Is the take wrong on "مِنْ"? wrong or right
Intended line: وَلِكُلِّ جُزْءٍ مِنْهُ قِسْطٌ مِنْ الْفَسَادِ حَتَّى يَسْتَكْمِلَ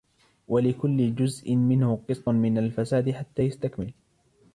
right